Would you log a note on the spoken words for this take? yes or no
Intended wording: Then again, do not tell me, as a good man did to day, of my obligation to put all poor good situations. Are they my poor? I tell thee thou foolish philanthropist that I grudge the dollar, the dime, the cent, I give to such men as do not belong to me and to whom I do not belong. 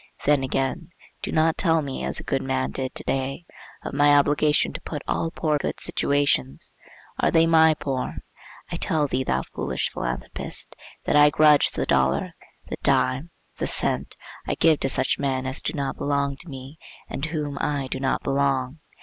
no